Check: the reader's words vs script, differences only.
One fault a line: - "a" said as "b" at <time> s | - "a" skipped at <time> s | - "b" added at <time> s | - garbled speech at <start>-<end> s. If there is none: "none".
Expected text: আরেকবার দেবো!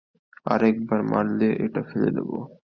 - "মারলে এটা ফেলে" added at 1.1 s